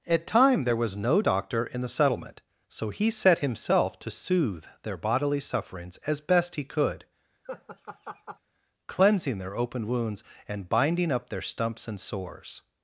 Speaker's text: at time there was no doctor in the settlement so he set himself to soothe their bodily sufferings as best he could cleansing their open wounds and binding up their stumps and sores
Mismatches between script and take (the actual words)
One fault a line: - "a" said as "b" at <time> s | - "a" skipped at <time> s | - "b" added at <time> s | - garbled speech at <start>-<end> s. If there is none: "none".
none